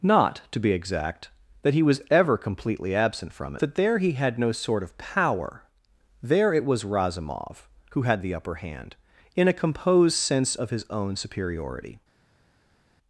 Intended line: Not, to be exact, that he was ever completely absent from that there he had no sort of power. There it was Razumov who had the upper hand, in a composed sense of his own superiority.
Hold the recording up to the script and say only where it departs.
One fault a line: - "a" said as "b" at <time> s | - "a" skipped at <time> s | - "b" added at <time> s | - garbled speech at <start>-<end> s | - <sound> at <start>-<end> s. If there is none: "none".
none